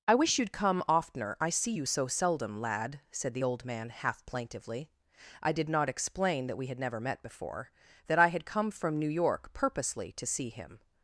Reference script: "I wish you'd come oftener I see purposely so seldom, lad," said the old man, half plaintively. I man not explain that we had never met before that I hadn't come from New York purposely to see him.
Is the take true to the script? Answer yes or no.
no